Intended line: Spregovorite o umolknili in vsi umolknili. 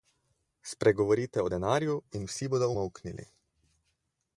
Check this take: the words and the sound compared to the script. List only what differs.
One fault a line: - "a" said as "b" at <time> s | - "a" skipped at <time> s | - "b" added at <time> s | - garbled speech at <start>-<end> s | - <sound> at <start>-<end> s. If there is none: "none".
- "umolknili" said as "denarju" at 1.5 s
- "bodo" added at 2.5 s